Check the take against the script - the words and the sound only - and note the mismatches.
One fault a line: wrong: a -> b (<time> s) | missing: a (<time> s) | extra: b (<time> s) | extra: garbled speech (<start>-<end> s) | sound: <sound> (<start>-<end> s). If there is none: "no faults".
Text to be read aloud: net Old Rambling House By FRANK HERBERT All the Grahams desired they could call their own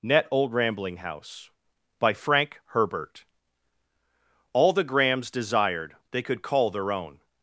no faults